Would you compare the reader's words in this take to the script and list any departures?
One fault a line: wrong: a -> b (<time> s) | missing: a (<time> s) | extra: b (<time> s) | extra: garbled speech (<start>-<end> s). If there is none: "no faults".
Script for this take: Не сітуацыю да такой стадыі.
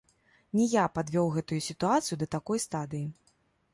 extra: я падвёў гэтую (0.7 s)